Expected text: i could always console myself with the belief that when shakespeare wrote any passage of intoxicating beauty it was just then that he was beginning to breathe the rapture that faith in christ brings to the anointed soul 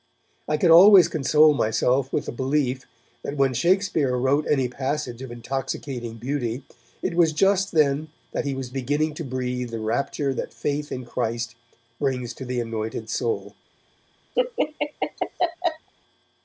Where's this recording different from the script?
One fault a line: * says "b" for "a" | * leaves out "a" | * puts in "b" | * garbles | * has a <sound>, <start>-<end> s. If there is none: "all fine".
* has a laugh, 14.3-15.9 s